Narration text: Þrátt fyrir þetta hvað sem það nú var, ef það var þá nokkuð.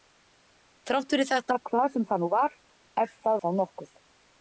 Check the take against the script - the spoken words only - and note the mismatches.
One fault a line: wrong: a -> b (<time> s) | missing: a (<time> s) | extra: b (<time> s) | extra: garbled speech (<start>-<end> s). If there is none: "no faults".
missing: var (3.4 s)